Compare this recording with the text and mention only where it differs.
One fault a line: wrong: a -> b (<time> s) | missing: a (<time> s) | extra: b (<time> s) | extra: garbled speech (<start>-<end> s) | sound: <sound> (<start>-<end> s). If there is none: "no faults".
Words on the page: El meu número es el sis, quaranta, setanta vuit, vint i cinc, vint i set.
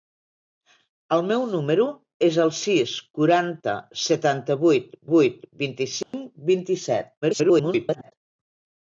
extra: vuit (5.1 s)
sound: dropout (6.0-6.1 s)
extra: garbled speech (7.2-8.1 s)